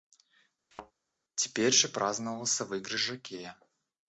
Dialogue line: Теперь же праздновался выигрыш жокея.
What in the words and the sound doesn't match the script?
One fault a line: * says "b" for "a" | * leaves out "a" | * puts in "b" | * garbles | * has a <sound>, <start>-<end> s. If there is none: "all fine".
* has a thud, 0.7-0.9 s